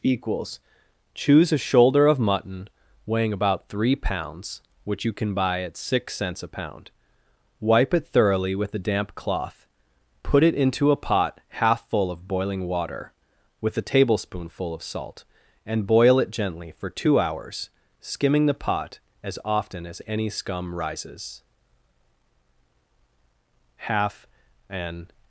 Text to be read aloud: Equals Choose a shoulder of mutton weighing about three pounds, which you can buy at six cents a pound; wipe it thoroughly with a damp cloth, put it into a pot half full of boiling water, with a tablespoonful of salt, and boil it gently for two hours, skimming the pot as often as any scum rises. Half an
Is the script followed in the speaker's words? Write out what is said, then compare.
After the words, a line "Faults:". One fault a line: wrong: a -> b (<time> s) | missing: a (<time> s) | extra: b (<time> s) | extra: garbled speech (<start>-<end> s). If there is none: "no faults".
Equals Choose a shoulder of mutton weighing about three pounds, which you can buy at six cents a pound; wipe it thoroughly with a damp cloth, put it into a pot half full of boiling water, with a tablespoonful of salt, and boil it gently for two hours, skimming the pot as often as any scum rises. Half an
Faults:
no faults